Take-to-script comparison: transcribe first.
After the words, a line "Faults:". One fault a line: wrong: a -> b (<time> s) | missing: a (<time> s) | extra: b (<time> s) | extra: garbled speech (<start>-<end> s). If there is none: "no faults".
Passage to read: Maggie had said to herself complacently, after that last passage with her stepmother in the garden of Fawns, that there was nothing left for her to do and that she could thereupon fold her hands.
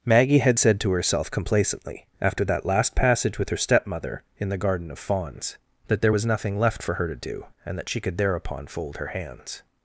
Maggie had said to herself complacently, after that last passage with her stepmother in the garden of Fawns, that there was nothing left for her to do and that she could thereupon fold her hands.
Faults:
no faults